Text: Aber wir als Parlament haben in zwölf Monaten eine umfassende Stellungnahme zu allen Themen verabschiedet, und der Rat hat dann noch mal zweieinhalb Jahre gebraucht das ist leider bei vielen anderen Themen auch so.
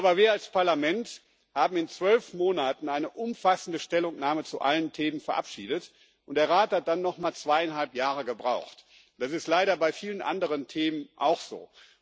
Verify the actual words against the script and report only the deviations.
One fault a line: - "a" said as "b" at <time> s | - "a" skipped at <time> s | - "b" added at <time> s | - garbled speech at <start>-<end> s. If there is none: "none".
none